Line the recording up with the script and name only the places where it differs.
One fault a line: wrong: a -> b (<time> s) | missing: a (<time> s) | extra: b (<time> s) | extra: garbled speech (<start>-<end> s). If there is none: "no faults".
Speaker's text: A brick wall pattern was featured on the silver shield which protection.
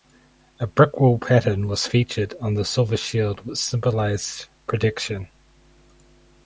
extra: symbolized (3.6 s)